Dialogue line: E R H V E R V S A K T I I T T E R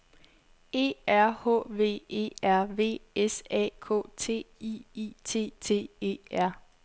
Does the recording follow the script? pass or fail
pass